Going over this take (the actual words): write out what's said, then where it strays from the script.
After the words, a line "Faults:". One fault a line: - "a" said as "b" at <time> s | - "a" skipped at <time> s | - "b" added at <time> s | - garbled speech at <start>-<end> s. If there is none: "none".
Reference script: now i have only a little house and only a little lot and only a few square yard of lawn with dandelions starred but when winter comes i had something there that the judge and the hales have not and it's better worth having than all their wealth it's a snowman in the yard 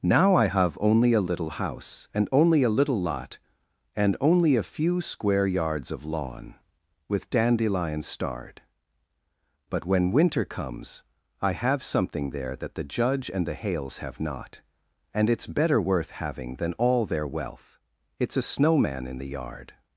now i have only a little house and only a little lot and only a few square yards of lawn with dandelions starred but when winter comes i have something there that the judge and the hales have not and it's better worth having than all their wealth it's a snowman in the yard
Faults:
- "yard" said as "yards" at 5.5 s
- "had" said as "have" at 11.5 s